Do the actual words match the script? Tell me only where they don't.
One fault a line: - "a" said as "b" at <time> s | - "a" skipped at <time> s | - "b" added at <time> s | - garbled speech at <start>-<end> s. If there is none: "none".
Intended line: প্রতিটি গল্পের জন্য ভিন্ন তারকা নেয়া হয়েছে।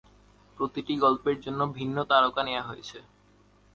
none